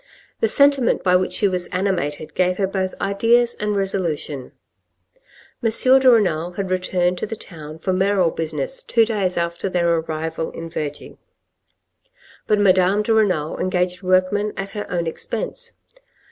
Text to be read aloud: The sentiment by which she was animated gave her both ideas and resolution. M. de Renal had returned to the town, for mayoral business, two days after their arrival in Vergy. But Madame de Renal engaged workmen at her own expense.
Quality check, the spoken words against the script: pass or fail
pass